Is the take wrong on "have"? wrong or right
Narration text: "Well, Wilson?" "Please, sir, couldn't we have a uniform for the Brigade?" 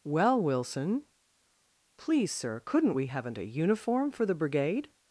wrong